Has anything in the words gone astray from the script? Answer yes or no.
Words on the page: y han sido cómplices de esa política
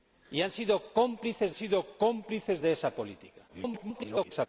yes